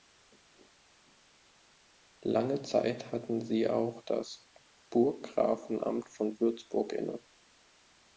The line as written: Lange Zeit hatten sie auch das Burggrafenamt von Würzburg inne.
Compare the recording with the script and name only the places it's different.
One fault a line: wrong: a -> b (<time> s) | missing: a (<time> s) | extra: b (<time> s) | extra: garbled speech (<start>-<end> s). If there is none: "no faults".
no faults